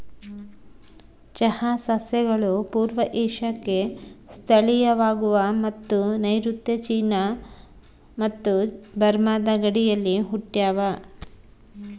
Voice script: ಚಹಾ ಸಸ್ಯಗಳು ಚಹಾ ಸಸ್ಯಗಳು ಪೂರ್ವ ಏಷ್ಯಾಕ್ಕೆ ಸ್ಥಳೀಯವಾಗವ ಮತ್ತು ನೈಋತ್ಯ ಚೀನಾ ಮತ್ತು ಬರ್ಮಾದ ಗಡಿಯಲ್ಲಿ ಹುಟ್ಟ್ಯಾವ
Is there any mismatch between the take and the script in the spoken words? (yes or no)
yes